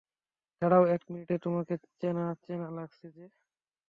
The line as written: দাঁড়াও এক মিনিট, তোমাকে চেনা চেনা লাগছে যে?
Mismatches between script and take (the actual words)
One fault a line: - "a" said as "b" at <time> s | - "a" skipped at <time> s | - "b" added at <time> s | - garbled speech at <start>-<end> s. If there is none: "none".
none